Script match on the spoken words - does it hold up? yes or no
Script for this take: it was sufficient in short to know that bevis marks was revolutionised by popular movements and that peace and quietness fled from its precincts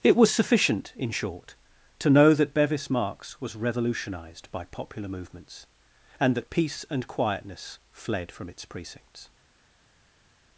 yes